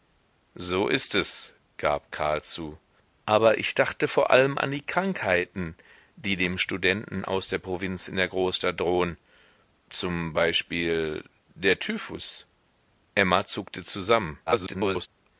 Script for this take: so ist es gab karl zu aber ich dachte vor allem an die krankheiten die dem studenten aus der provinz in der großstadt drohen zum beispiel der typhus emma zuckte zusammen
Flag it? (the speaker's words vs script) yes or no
yes